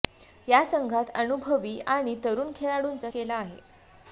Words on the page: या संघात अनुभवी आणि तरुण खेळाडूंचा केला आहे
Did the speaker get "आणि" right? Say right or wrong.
right